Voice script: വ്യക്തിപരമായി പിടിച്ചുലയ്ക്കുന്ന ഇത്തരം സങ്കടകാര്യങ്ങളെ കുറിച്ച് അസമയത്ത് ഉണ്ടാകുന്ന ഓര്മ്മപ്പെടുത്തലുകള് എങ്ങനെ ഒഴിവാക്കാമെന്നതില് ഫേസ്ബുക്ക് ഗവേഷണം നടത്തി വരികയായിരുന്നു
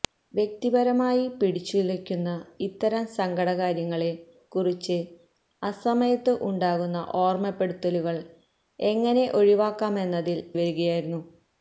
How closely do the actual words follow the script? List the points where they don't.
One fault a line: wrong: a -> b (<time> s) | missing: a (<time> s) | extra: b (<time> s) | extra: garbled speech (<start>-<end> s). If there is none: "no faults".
missing: ഫേസ്ബുക്ക് ഗവേഷണം നടത്തി (10.5 s)